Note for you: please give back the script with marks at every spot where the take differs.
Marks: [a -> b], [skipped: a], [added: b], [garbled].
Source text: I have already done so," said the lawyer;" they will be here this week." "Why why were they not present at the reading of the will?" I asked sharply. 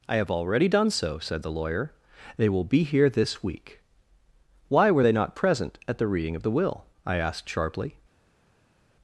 I have already done so," said the lawyer;" they will be here this week." "Why [skipped: why] were they not present at the reading of the will?" I asked sharply.